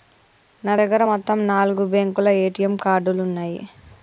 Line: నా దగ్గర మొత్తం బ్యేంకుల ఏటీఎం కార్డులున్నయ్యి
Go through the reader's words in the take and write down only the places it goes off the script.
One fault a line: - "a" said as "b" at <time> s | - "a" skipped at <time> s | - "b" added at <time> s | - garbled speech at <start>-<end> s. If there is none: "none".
- "నాలుగు" added at 1.5 s